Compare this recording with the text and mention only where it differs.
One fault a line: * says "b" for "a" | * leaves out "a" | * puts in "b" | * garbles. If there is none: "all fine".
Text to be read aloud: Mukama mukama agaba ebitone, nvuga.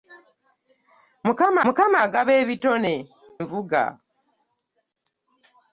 all fine